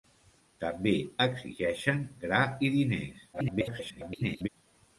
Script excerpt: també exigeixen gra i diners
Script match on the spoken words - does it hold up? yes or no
no